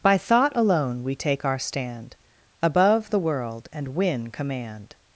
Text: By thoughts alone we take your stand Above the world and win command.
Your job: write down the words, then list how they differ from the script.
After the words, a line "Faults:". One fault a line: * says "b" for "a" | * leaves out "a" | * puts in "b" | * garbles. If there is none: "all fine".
By thought alone we take our stand Above the world and win command.
Faults:
* says "thought" for "thoughts"
* says "our" for "your"